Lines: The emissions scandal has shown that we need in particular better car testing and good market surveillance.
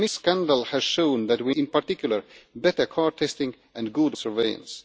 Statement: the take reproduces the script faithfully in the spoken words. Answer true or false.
false